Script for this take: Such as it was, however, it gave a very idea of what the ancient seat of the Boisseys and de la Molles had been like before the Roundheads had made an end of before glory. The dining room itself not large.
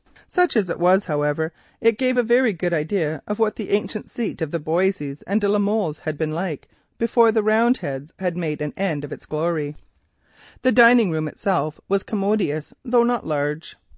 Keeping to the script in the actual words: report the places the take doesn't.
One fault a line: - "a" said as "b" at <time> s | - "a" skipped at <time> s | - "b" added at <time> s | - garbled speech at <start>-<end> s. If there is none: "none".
- "good" added at 2.5 s
- "before" said as "its" at 9.1 s
- "was commodious though" added at 11.9 s